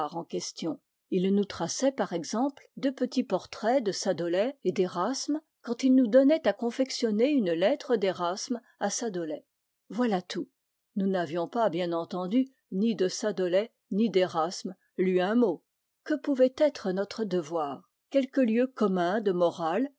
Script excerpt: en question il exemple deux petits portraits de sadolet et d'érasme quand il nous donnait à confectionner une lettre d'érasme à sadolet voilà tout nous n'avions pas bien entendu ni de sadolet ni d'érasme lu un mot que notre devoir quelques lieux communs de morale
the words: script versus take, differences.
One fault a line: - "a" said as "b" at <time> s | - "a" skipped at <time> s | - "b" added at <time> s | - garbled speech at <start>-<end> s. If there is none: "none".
- "nous traçait par" added at 1.3 s
- "pouvait être" added at 16.1 s